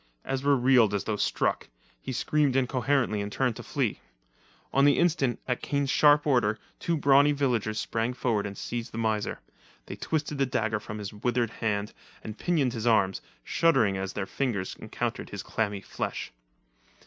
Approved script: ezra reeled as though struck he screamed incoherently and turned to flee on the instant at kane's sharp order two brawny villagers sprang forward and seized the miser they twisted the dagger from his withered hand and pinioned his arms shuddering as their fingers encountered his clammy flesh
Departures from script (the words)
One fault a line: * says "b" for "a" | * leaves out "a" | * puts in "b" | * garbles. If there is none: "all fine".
all fine